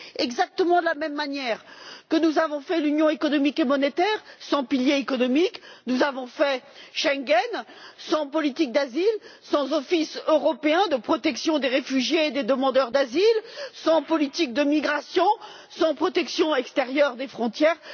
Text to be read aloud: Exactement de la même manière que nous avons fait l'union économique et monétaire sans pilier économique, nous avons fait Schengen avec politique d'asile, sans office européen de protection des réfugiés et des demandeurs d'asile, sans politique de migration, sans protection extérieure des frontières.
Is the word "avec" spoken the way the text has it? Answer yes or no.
no